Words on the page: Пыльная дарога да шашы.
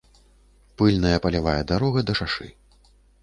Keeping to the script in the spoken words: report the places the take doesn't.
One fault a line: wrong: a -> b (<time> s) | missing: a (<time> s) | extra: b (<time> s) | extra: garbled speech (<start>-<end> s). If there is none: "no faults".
extra: палявая (1.3 s)